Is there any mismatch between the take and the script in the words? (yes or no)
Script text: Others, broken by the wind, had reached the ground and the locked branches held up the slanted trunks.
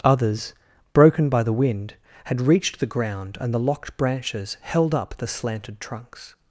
no